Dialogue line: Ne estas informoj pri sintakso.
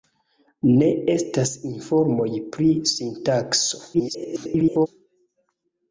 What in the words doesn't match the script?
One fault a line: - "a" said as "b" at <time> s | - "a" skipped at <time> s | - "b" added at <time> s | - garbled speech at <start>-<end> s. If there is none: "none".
- garbled speech at 3.9-4.9 s